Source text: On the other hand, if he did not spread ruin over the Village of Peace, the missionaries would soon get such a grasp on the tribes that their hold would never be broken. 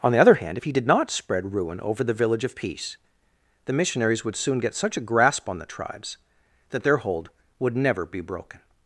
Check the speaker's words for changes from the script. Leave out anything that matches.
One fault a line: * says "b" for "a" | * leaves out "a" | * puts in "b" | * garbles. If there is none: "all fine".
all fine